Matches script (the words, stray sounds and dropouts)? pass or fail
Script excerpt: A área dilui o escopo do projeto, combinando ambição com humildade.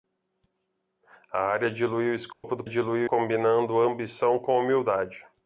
fail